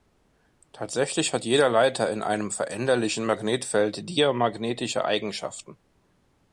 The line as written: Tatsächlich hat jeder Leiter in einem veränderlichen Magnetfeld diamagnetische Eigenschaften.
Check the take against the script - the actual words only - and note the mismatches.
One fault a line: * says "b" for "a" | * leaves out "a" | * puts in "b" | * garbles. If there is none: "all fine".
all fine